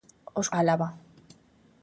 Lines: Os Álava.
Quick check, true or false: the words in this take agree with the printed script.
true